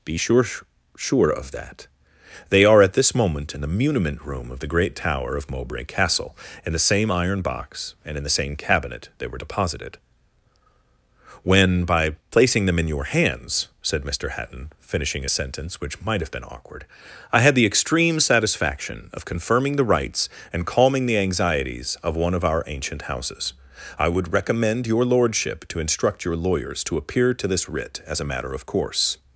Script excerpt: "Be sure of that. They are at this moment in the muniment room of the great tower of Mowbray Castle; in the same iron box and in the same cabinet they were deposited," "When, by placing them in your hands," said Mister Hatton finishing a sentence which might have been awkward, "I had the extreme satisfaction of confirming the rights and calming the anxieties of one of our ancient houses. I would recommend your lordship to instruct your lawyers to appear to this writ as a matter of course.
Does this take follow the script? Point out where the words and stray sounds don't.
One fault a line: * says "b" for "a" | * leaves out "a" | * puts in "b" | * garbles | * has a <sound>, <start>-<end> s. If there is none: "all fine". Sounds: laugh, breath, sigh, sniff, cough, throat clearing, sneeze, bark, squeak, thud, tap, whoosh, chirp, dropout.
* puts in "sure"